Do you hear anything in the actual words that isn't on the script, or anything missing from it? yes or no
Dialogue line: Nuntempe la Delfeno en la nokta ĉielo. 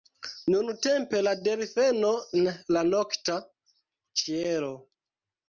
no